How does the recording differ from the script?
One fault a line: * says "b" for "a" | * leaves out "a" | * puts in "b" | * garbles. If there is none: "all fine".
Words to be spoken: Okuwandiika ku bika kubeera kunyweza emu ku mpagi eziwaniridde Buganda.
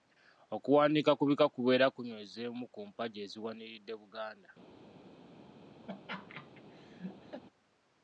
all fine